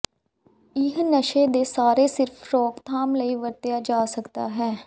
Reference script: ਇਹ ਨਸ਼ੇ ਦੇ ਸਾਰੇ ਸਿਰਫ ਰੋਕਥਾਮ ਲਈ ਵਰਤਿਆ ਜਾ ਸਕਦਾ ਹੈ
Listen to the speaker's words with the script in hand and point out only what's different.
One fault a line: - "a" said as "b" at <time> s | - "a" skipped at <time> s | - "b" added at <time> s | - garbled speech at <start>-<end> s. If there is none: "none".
none